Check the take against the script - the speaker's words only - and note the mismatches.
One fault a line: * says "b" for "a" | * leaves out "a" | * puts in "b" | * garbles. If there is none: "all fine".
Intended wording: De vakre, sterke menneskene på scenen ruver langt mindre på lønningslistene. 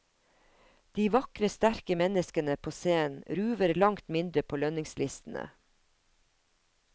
all fine